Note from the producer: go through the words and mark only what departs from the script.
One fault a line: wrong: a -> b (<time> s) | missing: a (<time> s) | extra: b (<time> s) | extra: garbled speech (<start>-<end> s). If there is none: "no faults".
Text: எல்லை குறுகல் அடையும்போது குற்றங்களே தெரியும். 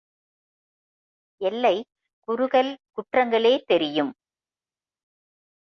missing: அடையும்போது (2.7 s)